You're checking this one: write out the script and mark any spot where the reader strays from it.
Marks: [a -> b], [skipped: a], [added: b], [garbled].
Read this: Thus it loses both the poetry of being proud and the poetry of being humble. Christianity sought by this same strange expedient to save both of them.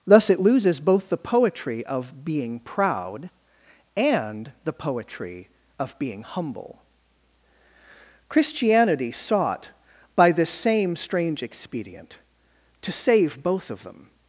Thus it loses both the poetry of being proud and the poetry of being humble. Christianity sought by this same strange expedient to save both of them.